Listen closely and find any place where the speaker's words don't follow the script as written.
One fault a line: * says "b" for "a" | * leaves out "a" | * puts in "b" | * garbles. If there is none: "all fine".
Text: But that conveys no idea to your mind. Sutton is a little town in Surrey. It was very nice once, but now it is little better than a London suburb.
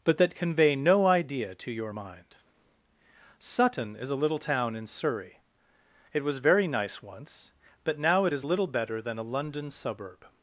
* says "convey" for "conveys"